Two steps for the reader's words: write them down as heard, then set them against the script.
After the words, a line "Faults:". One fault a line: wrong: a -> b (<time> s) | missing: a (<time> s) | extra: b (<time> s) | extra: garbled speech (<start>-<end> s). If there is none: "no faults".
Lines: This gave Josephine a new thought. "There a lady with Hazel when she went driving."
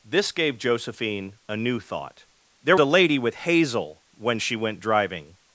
This gave Josephine a new thought. "There a lady with Hazel when she went driving."
Faults:
no faults